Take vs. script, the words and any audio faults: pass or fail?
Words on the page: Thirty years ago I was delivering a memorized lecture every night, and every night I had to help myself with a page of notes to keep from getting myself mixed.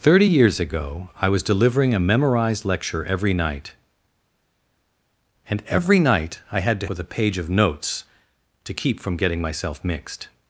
fail